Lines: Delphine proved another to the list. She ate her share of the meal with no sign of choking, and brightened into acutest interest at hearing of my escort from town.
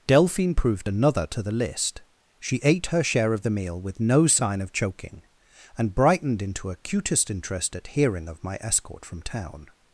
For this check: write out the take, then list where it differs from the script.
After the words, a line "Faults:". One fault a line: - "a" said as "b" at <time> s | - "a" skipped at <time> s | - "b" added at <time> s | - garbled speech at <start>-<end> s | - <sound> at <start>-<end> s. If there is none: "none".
Delphine proved another to the list. She ate her share of the meal with no sign of choking, and brightened into acutest interest at hearing of my escort from town.
Faults:
none